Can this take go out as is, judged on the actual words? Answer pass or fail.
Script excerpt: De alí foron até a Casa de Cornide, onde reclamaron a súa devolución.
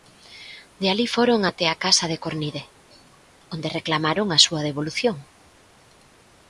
pass